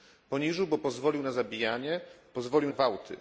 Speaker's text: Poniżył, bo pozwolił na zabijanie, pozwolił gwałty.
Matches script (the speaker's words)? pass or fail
pass